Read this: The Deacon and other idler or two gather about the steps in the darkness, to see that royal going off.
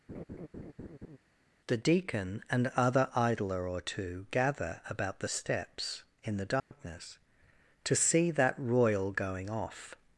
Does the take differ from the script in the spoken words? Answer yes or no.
no